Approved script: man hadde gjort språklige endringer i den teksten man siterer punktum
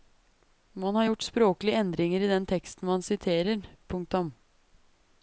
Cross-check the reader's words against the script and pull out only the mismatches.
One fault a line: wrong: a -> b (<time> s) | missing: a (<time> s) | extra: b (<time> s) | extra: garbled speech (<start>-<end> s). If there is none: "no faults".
wrong: hadde -> har (0.9 s)